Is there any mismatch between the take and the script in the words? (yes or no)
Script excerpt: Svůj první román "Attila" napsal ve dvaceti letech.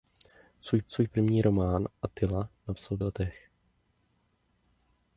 yes